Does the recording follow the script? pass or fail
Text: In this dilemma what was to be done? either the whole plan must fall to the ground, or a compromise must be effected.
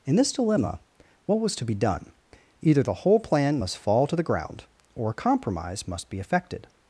pass